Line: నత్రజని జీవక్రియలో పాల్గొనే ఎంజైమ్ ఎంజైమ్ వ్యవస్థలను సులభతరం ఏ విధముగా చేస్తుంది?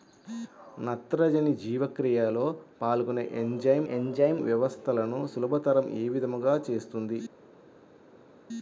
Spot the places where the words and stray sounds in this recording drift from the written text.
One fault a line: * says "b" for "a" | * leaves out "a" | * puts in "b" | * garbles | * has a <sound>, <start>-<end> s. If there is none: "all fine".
all fine